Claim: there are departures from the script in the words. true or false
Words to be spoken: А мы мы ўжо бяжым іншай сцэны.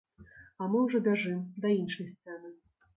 true